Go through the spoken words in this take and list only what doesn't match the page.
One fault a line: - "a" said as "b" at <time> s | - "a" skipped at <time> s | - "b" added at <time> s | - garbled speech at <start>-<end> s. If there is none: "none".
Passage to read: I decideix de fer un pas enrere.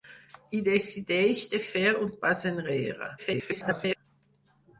- garbled speech at 3.2-4.0 s